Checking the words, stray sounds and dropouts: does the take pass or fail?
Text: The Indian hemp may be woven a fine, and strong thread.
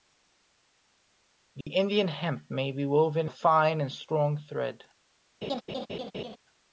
fail